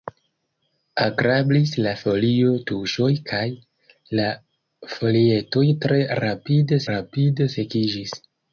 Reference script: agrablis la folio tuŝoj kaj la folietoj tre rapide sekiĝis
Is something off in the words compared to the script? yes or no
yes